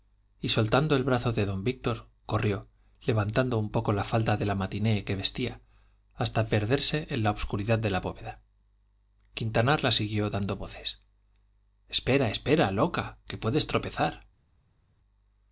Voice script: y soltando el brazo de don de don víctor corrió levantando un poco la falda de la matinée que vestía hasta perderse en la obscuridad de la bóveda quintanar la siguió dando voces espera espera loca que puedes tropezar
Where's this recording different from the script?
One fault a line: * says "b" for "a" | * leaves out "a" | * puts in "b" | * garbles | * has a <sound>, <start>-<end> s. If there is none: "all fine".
* leaves out "de don"